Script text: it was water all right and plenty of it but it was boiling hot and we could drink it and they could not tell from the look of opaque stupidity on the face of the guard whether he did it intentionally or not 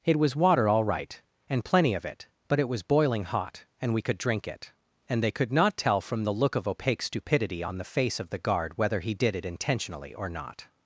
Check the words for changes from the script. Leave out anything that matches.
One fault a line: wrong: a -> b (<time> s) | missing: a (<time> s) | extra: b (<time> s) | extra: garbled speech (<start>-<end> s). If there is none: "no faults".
no faults